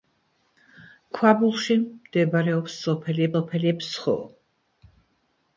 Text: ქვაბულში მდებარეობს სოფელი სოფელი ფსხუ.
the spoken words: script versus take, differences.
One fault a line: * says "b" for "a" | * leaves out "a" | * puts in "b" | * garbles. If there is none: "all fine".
all fine